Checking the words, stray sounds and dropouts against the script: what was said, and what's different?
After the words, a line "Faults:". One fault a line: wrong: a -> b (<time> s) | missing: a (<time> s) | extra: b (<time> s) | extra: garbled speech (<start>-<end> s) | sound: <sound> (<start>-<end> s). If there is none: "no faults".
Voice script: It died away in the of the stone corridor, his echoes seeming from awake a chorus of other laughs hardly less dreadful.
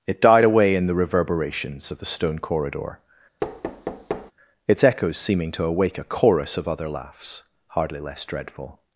It died away in the reverberations of the stone corridor, its echoes seeming to awake a chorus of other laughs hardly less dreadful.
Faults:
extra: reverberations (1.0 s)
sound: thud (3.4-4.3 s)
wrong: his -> its (4.7 s)
wrong: from -> to (5.5 s)